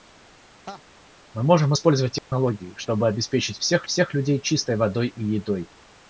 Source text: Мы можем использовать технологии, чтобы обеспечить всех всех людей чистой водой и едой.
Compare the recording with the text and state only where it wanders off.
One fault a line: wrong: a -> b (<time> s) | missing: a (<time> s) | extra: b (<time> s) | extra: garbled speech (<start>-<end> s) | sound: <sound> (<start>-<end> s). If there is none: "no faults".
sound: laugh (0.7-0.8 s)
sound: dropout (2.2-2.3 s)